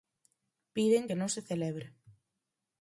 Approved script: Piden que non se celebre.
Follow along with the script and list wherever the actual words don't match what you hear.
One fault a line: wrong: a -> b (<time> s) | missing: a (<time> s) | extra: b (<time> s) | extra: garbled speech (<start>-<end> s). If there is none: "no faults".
no faults